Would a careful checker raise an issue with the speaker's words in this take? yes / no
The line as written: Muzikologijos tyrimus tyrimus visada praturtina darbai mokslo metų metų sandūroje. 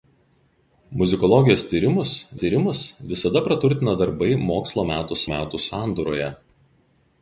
no